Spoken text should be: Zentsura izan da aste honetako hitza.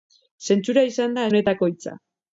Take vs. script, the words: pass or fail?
fail